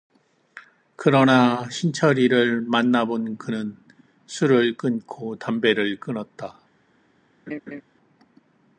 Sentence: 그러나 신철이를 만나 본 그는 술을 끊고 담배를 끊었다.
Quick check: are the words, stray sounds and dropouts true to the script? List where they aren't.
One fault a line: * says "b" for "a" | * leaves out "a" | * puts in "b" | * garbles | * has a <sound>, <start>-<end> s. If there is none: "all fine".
* has a laugh, 7.5-7.8 s